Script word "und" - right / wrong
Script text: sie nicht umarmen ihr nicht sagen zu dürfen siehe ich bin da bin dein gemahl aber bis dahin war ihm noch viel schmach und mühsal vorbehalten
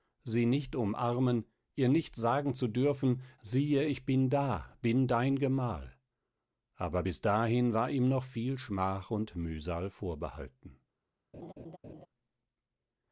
right